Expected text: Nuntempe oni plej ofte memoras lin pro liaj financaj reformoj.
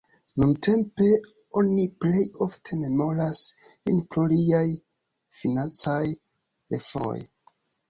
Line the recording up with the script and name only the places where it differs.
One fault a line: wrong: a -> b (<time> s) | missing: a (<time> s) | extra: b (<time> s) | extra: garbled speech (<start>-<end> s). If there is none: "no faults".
no faults